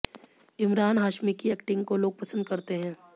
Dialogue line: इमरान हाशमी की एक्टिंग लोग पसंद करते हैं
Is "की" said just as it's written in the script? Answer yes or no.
yes